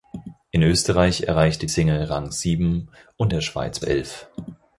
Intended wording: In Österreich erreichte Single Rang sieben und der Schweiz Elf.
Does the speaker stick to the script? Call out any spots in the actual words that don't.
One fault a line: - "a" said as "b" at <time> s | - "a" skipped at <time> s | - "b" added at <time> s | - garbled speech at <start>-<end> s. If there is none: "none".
none